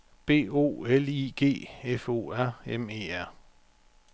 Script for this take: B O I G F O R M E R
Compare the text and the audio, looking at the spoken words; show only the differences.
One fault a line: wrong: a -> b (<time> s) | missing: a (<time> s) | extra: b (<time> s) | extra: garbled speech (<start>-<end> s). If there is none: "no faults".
extra: L (0.8 s)